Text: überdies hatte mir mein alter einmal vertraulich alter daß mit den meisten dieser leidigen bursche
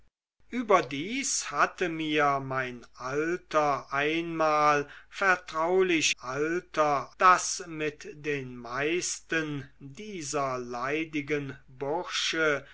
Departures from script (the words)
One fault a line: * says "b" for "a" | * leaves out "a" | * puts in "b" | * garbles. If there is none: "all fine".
all fine